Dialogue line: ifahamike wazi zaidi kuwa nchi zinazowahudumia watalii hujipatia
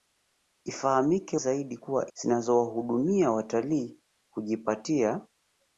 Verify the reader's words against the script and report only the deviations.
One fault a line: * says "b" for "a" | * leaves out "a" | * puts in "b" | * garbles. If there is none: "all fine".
* leaves out "wazi"
* leaves out "nchi"